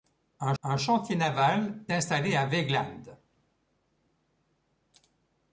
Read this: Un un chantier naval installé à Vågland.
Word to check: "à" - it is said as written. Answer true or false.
true